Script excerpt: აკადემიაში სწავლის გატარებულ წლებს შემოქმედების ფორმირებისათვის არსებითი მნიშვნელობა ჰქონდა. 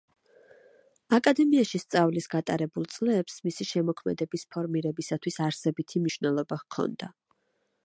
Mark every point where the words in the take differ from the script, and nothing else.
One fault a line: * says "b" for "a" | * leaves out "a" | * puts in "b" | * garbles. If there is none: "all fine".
* puts in "მისი"